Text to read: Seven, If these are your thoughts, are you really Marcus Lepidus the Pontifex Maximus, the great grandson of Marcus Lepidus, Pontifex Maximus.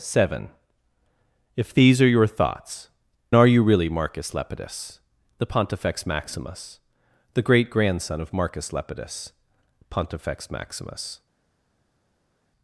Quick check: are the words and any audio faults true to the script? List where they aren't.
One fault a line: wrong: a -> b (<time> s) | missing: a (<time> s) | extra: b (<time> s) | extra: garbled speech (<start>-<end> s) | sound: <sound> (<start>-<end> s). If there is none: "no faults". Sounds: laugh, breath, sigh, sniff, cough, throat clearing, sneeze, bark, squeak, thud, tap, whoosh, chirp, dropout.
no faults